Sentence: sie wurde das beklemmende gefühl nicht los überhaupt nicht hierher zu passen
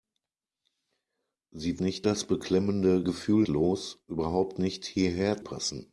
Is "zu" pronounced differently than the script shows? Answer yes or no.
yes